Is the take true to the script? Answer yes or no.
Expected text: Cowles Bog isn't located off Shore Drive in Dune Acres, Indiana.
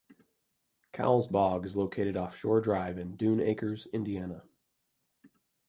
no